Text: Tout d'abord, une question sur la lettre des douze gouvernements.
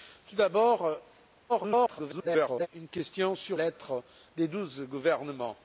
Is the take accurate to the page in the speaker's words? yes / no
no